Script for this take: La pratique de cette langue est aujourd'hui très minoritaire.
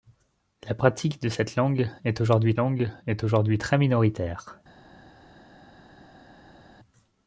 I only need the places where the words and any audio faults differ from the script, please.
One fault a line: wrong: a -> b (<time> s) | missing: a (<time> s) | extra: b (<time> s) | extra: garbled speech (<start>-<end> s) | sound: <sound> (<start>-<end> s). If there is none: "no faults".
extra: langue est aujourd'hui (2.6 s)